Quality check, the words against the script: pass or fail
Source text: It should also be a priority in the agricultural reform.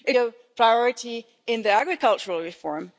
fail